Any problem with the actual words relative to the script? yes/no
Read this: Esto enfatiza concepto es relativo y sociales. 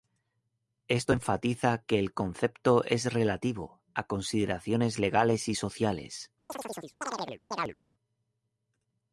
yes